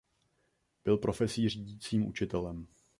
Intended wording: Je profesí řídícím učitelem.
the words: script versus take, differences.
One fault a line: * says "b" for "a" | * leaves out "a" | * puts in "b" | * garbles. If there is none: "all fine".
* says "Byl" for "Je"